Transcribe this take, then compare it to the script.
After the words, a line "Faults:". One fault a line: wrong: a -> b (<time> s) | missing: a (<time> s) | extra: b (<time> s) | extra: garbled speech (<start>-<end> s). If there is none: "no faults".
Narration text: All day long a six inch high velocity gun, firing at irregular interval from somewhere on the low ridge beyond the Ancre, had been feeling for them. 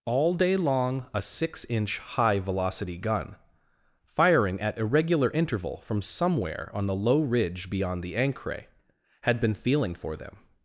All day long a six inch high velocity gun, firing at irregular interval from somewhere on the low ridge beyond the Ancre, had been feeling for them.
Faults:
no faults